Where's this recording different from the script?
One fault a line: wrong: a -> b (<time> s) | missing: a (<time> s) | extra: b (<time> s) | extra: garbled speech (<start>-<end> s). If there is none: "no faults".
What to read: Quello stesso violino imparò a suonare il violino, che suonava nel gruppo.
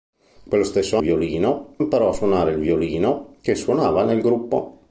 no faults